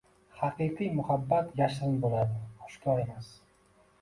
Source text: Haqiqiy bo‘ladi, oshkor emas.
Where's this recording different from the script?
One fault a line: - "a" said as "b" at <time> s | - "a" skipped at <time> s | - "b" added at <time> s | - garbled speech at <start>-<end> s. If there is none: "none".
- "muhabbat yashirin" added at 1.0 s